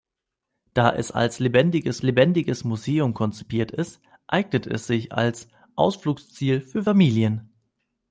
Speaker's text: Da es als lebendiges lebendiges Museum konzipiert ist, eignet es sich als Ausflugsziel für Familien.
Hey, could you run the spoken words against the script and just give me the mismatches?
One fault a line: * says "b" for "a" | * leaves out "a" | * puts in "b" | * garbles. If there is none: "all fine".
all fine